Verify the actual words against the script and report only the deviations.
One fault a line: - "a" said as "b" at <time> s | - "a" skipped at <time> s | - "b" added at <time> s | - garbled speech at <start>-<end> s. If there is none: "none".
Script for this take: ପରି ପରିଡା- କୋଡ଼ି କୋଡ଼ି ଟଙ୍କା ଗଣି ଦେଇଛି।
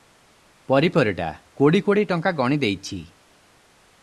none